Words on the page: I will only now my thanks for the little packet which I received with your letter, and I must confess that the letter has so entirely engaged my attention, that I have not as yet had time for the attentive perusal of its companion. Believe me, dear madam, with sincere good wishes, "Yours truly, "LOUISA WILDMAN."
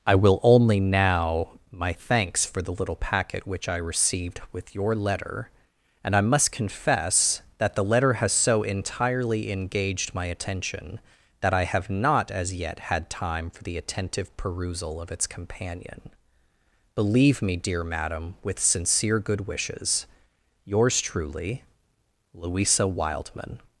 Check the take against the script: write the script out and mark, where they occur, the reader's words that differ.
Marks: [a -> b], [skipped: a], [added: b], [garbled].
I will only now my thanks for the little packet which I received with your letter, and I must confess that the letter has so entirely engaged my attention, that I have not as yet had time for the attentive perusal of its companion. Believe me, dear madam, with sincere good wishes, "Yours truly, "LOUISA WILDMAN."